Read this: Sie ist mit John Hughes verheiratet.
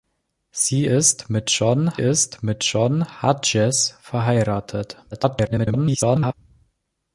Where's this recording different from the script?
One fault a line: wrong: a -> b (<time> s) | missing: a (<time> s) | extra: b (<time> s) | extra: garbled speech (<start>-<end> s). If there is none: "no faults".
extra: ist mit John (2.0 s)
extra: garbled speech (5.1-6.3 s)